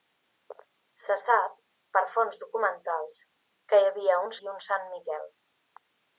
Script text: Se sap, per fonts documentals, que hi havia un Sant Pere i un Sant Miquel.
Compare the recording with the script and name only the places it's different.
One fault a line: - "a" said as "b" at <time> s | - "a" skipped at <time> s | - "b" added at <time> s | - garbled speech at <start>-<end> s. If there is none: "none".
- "Sant Pere" skipped at 4.3 s